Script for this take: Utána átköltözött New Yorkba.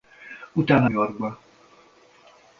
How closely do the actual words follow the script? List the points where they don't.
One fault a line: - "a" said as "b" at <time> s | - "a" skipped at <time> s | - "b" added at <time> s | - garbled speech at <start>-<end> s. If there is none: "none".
- "átköltözött New" skipped at 0.9 s